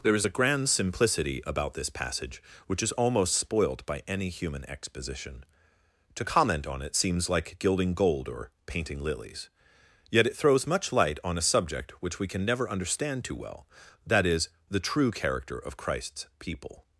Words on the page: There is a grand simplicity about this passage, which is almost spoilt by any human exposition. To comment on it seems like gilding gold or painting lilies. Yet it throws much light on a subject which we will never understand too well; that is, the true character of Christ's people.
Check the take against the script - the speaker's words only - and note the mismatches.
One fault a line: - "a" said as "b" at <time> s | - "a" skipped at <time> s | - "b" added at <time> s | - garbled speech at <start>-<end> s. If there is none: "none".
- "will" said as "can" at 12.3 s